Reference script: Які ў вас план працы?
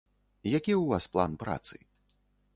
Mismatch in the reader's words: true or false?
false